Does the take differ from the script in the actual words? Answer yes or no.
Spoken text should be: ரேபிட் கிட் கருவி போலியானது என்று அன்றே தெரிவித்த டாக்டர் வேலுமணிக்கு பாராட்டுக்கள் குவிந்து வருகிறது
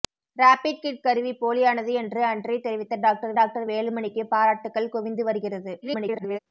yes